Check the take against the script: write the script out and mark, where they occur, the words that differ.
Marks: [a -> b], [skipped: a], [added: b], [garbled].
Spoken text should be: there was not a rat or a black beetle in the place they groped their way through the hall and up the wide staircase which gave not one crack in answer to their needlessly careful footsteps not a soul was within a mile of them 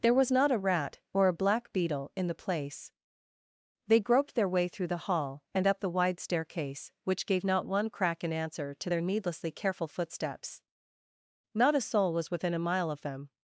there was not a rat or a black beetle in the place they groped their way through the hall and up the wide staircase which gave not one crack in answer to their needlessly careful footsteps not a soul was within a mile of them